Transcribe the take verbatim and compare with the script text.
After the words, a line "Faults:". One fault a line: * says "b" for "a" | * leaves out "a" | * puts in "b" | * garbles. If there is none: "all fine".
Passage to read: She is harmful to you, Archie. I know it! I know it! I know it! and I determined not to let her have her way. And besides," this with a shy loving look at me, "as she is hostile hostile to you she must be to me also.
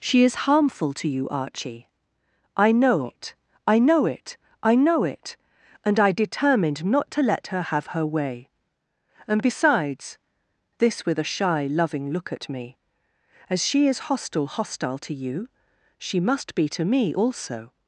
She is harmful to you, Archie. I know it! I know it! I know it! and I determined not to let her have her way. And besides," this with a shy loving look at me, "as she is hostile hostile to you she must be to me also.
Faults:
all fine